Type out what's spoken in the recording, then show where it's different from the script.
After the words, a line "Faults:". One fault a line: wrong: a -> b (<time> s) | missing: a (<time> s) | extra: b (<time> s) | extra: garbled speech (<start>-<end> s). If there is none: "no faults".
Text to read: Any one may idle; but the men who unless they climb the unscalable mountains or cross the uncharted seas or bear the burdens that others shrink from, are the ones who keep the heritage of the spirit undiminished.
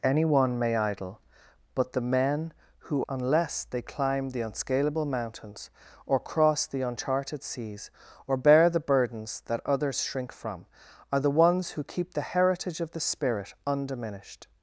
Any one may idle; but the men who unless they climb the unscalable mountains or cross the uncharted seas or bear the burdens that others shrink from, are the ones who keep the heritage of the spirit undiminished.
Faults:
no faults